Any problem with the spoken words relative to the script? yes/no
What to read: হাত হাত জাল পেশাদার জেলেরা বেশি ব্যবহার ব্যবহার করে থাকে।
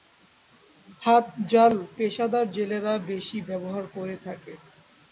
yes